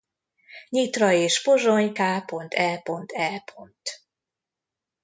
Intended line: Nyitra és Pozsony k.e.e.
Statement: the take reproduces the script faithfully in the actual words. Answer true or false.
true